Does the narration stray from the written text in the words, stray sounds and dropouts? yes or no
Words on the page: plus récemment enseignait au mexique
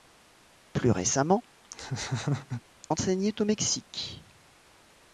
yes